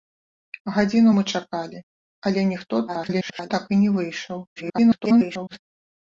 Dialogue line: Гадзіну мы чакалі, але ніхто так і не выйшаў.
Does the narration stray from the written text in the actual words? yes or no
yes